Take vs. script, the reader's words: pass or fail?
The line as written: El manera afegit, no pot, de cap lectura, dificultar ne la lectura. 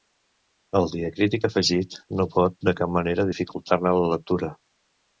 fail